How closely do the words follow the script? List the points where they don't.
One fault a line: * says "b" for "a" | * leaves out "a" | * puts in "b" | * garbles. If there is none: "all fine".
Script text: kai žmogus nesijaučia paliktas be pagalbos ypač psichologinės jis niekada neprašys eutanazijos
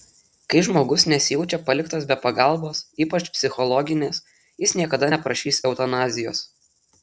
all fine